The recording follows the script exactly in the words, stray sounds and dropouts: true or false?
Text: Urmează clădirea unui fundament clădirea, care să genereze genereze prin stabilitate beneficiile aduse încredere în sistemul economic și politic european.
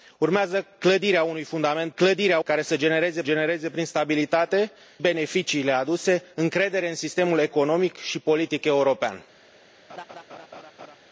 false